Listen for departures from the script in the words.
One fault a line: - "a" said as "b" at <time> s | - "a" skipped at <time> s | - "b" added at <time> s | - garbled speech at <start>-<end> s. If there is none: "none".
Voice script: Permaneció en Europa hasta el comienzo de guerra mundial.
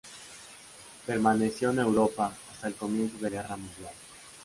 none